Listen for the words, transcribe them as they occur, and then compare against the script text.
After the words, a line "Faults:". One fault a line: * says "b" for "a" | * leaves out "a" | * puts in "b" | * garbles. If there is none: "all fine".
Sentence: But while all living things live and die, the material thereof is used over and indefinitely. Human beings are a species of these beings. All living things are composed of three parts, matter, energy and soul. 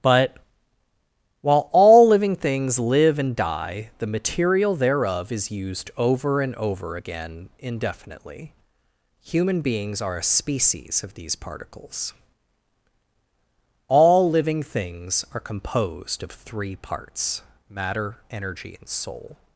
But while all living things live and die, the material thereof is used over and over again indefinitely. Human beings are a species of these particles. All living things are composed of three parts, matter, energy and soul.
Faults:
* puts in "over again"
* says "particles" for "beings"